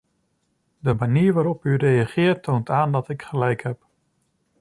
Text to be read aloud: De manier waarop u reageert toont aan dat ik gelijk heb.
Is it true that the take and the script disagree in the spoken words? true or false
false